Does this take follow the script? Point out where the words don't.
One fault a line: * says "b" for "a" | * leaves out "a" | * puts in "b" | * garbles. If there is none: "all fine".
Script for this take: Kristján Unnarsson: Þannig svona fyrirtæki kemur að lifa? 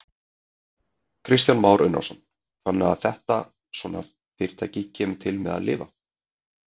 * puts in "Már"
* puts in "að þetta"
* puts in "til með"